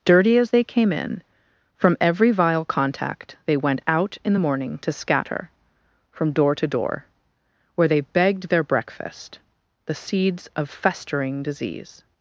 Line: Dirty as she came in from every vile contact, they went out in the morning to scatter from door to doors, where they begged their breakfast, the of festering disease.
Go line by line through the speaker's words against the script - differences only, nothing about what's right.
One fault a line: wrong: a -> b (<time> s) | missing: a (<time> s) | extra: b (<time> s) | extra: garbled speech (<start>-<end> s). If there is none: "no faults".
wrong: she -> they (0.5 s)
wrong: doors -> door (6.7 s)
extra: seeds (9.9 s)